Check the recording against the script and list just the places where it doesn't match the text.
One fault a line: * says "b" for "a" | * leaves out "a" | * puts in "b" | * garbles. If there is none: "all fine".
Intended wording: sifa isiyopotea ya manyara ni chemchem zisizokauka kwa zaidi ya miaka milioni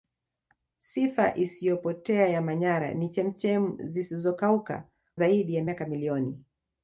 * leaves out "kwa"